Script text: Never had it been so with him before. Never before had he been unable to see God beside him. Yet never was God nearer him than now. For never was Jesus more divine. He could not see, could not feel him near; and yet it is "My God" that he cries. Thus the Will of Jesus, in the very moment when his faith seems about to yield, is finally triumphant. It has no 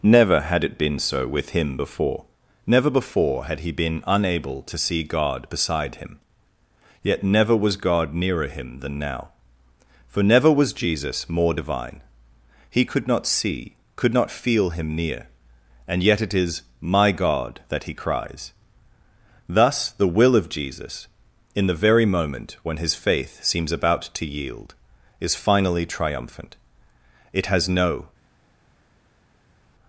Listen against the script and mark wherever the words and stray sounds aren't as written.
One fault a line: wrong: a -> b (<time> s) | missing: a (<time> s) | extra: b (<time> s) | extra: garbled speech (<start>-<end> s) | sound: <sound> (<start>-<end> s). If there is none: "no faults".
no faults